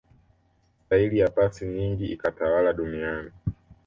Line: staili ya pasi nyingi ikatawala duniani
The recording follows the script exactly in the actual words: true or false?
true